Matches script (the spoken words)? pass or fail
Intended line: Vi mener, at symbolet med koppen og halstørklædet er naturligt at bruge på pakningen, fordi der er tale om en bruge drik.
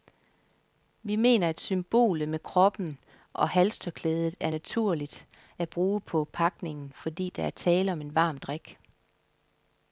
fail